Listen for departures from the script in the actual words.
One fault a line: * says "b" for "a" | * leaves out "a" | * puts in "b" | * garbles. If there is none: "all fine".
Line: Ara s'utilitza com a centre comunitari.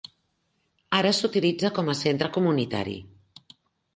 all fine